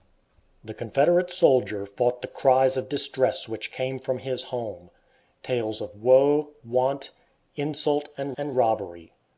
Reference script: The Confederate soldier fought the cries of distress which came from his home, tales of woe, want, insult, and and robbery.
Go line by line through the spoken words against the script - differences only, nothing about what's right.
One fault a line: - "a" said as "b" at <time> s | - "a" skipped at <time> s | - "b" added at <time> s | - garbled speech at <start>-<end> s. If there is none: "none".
none